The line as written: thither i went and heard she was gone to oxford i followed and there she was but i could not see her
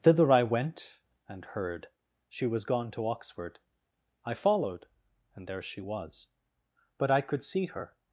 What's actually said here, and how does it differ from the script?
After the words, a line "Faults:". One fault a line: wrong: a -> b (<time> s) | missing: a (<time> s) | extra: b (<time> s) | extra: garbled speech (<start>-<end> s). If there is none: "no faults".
thither i went and heard she was gone to oxford i followed and there she was but i could see her
Faults:
missing: not (7.4 s)